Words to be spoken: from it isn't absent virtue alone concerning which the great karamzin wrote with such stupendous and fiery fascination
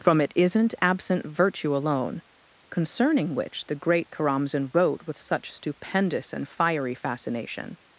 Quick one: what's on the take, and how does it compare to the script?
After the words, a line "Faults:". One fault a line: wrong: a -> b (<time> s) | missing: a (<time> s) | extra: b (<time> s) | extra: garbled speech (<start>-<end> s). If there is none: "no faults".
from it isn't absent virtue alone concerning which the great karamzin wrote with such stupendous and fiery fascination
Faults:
no faults